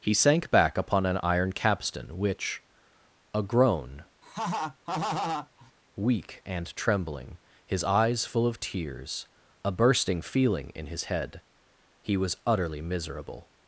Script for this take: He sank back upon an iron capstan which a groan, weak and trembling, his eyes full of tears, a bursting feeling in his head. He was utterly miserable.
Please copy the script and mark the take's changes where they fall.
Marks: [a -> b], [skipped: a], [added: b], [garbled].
He sank back upon an iron capstan which a groan, weak and trembling, his eyes full of tears, a bursting feeling in his head. He was utterly miserable.